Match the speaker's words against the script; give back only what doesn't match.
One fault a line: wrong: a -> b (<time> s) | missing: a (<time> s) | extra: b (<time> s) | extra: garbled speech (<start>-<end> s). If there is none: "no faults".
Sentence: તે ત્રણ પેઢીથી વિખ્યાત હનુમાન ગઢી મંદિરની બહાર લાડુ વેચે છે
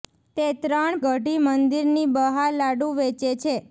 missing: પેઢીથી વિખ્યાત હનુમાન (0.9 s)